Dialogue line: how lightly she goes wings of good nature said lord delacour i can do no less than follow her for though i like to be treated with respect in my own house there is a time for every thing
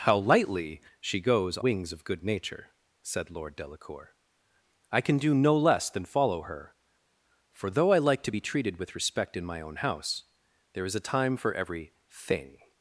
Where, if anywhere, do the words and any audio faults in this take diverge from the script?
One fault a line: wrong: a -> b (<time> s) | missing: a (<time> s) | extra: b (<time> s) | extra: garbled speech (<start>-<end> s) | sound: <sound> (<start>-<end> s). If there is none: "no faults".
no faults